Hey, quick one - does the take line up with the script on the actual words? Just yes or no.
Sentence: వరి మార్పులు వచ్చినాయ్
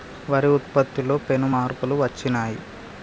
no